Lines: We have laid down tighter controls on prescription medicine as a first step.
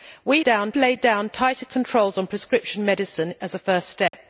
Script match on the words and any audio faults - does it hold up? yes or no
no